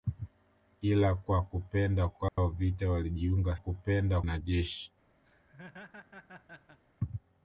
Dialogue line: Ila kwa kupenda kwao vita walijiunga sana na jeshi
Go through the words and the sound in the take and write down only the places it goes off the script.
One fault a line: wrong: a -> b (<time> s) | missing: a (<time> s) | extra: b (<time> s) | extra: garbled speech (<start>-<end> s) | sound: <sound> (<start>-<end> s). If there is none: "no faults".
sound: dropout (2.3-2.4 s)
wrong: sana -> kupenda (3.5 s)
sound: laugh (5.2-6.8 s)